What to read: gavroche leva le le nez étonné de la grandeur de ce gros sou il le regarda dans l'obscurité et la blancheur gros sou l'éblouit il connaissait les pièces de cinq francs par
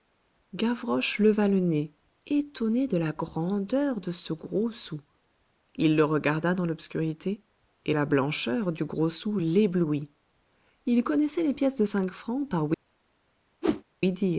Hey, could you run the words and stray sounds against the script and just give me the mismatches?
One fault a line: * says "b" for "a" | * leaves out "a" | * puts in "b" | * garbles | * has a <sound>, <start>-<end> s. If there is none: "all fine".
* leaves out "le"
* puts in "du"
* has a whoosh, 13.6-13.8 s